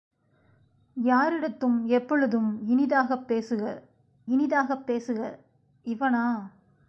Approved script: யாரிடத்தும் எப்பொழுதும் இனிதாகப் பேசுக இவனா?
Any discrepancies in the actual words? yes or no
yes